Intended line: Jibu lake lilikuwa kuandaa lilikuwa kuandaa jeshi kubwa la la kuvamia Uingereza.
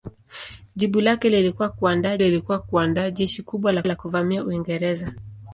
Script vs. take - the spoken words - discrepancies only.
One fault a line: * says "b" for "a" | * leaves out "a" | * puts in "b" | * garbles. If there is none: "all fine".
all fine